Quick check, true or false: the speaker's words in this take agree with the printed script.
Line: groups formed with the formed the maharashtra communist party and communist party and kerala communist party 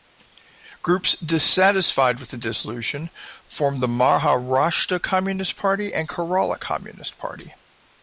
false